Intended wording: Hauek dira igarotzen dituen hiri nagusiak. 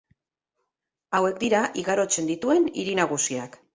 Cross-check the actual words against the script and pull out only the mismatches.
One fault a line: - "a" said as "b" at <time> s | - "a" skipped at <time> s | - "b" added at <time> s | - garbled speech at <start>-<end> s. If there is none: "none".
none